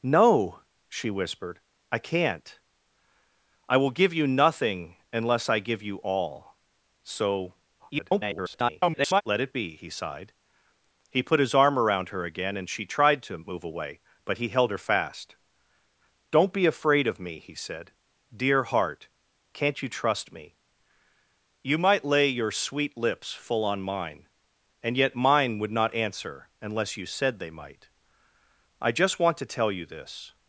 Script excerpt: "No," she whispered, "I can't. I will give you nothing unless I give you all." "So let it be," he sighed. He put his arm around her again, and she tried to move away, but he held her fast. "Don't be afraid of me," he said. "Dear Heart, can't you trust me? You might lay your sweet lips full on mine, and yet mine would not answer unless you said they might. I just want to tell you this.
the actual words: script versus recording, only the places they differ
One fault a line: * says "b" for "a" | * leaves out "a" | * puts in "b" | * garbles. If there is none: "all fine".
* garbles